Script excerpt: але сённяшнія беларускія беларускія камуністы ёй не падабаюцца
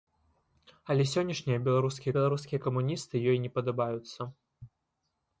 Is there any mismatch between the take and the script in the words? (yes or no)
no